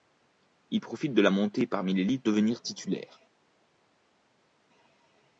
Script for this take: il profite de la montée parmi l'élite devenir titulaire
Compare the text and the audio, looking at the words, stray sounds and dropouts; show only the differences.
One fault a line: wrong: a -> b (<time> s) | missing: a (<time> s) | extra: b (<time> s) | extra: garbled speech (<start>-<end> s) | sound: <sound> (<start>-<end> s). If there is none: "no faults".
no faults